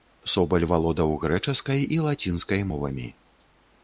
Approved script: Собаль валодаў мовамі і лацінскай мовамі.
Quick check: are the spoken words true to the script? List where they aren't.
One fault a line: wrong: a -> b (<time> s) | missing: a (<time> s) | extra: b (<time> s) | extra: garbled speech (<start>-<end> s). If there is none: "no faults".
wrong: мовамі -> грэчаскай (1.2 s)